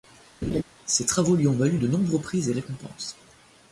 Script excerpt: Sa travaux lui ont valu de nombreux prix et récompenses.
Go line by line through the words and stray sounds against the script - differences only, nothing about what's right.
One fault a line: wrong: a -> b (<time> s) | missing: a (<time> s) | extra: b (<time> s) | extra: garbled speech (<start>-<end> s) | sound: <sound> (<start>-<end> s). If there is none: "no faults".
sound: laugh (0.4-0.6 s)
wrong: Sa -> Ses (0.9 s)